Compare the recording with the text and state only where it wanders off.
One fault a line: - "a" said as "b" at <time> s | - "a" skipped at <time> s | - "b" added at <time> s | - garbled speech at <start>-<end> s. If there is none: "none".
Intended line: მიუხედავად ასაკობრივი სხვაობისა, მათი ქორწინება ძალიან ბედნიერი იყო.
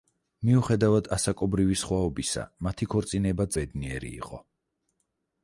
- "ძალიან" skipped at 3.5 s